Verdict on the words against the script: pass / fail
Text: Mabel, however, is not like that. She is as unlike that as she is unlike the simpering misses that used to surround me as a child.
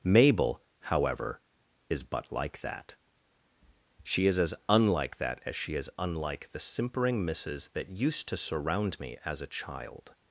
fail